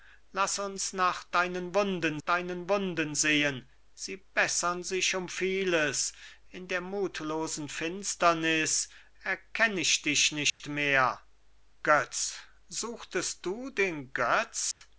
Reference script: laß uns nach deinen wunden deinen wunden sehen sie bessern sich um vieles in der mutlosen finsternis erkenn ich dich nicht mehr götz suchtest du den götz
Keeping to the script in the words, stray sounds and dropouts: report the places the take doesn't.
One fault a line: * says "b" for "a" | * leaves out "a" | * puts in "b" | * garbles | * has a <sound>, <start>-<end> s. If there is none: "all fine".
* has a dropout, 10.5-10.6 s
* has a dropout, 14.7-14.8 s